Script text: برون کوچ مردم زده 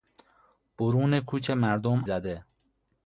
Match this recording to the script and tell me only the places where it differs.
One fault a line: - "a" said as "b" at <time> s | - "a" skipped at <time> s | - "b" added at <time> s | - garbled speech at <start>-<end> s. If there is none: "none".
none